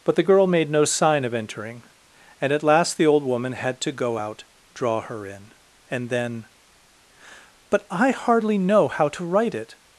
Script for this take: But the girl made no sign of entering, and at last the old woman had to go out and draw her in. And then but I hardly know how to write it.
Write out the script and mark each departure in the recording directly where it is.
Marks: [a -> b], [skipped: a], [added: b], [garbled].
But the girl made no sign of entering, and at last the old woman had to go out [skipped: and] draw her in. And then but I hardly know how to write it.